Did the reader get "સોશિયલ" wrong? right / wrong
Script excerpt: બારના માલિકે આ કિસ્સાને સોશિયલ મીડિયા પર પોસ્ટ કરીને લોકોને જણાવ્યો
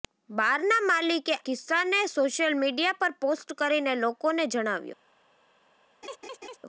right